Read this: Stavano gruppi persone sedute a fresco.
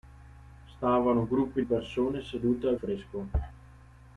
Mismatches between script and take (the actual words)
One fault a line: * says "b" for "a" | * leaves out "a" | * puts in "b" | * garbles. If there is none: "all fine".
all fine